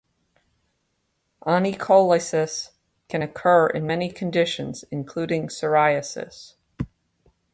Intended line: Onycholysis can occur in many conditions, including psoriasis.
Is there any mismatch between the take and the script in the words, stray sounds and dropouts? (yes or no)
no